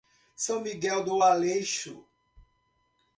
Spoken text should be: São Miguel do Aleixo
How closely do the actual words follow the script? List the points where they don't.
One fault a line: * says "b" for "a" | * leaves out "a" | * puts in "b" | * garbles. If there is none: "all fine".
all fine